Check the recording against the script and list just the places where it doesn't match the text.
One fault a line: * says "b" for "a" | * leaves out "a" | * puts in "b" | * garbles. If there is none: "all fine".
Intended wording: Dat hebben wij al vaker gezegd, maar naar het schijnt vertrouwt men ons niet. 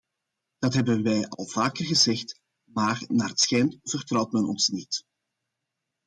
all fine